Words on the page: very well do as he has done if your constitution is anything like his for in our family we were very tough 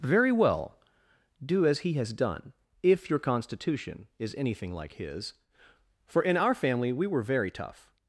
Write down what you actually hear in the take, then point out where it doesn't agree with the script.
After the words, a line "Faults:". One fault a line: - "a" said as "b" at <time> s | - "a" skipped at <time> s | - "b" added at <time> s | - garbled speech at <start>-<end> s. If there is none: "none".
very well do as he has done if your constitution is anything like his for in our family we were very tough
Faults:
none